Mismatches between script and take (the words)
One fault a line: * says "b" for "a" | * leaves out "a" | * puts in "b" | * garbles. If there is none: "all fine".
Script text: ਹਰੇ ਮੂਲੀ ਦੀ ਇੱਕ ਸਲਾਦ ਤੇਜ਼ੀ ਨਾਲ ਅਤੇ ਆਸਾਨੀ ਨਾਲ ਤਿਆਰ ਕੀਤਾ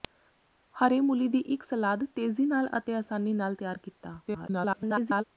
* garbles